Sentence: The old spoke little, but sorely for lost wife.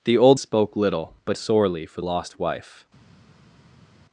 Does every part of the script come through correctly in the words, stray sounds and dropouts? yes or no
yes